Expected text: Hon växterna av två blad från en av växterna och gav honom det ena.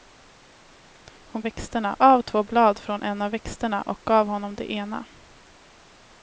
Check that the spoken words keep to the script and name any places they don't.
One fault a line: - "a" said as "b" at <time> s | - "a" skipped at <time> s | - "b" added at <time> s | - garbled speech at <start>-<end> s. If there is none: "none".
none